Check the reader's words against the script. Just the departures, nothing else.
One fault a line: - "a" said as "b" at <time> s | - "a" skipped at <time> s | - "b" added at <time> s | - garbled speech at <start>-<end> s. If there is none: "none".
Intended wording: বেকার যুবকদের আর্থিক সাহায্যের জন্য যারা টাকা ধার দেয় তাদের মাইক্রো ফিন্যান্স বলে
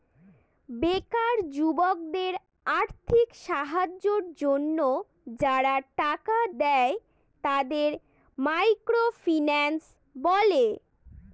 - "ধার" skipped at 6.4 s